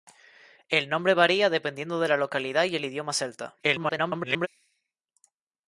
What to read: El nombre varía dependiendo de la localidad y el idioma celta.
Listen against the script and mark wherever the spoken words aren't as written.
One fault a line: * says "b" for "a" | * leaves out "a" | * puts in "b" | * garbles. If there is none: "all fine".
* garbles